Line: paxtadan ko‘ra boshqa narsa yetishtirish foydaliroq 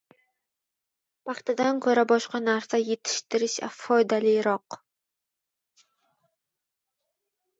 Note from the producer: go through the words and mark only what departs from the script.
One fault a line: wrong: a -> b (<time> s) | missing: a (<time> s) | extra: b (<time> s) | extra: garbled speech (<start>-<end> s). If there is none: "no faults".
no faults